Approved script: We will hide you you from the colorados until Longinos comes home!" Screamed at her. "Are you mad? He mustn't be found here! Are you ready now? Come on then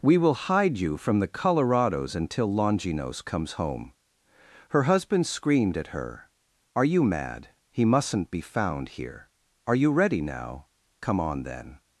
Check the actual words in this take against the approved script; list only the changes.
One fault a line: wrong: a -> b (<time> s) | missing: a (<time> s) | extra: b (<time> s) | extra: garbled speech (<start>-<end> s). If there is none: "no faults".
missing: you (1.0 s)
extra: Her husband (4.7 s)